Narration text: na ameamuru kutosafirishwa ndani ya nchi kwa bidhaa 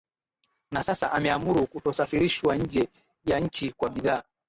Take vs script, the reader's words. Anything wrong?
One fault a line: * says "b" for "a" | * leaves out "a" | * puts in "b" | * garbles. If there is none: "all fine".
* puts in "sasa"
* says "nje" for "ndani"